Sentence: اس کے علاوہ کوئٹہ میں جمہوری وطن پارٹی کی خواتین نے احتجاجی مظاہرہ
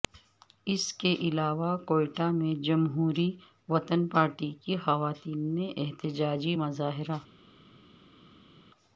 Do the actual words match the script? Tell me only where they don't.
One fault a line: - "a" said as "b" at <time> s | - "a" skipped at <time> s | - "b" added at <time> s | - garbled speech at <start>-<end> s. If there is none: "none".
none